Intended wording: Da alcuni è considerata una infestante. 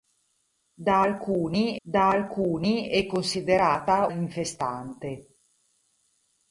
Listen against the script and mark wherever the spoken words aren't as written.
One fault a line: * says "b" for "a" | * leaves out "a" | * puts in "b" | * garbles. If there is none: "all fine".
* puts in "da alcuni"
* leaves out "una"